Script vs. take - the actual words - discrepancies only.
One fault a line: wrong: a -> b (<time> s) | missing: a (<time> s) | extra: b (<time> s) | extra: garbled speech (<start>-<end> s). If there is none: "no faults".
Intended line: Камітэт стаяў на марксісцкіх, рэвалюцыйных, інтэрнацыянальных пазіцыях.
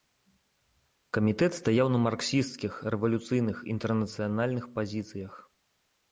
no faults